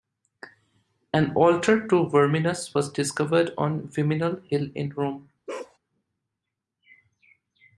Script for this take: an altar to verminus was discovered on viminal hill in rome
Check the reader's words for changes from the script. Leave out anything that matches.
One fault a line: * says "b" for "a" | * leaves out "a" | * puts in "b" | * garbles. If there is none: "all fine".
all fine